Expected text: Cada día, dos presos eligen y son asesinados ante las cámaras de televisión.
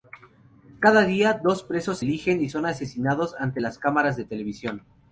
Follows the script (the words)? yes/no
yes